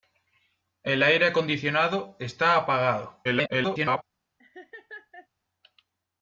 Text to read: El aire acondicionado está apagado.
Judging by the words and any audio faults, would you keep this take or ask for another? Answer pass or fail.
fail